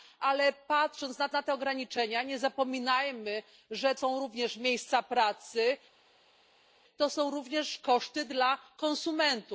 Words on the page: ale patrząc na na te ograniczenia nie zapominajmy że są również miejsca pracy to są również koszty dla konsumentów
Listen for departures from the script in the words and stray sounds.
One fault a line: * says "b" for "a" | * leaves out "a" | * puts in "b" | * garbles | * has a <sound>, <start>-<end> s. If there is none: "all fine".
all fine